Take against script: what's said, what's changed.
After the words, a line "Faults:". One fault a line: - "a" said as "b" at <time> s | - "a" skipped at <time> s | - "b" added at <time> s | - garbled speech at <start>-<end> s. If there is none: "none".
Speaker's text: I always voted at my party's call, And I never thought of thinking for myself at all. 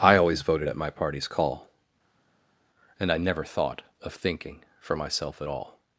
I always voted at my party's call, And I never thought of thinking for myself at all.
Faults:
none